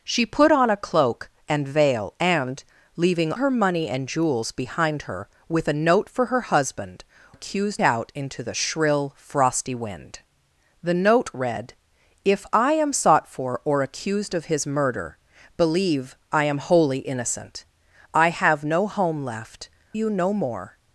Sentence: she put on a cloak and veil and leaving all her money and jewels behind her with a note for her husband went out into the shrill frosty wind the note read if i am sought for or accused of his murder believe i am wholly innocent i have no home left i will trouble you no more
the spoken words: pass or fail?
fail